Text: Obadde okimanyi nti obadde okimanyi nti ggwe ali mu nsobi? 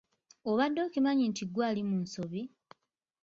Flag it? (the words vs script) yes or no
yes